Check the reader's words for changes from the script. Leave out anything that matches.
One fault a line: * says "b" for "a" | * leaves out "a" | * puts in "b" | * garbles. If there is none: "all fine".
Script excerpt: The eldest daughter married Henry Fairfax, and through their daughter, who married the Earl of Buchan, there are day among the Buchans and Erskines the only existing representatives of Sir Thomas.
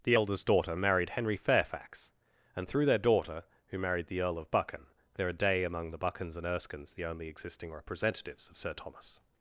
all fine